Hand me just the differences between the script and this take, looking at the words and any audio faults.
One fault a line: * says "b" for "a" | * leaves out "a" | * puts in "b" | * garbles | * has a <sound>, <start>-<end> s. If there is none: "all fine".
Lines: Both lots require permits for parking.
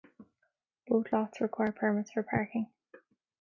all fine